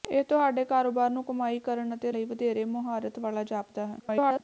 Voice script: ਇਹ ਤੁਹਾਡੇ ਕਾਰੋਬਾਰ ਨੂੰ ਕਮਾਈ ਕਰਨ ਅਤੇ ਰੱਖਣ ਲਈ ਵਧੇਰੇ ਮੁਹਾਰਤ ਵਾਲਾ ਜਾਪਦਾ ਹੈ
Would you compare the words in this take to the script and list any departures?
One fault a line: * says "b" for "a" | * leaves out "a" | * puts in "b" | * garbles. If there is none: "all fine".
* leaves out "ਰੱਖਣ"
* garbles